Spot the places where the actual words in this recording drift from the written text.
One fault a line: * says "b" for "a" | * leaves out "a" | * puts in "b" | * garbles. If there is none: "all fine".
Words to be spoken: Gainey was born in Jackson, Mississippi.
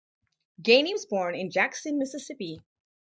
all fine